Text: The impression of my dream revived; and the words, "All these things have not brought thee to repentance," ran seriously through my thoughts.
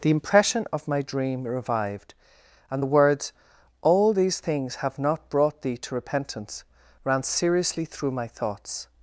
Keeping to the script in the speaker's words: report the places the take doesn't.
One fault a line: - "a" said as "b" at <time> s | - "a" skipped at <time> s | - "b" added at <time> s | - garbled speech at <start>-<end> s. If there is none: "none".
none